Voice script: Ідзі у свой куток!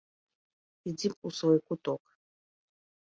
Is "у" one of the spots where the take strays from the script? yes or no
no